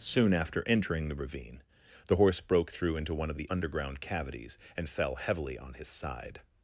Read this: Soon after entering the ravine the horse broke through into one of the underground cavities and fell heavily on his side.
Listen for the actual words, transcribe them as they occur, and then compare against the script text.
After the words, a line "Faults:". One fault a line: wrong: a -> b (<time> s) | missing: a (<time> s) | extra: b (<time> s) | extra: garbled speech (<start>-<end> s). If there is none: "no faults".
Soon after entering the ravine the horse broke through into one of the underground cavities and fell heavily on his side.
Faults:
no faults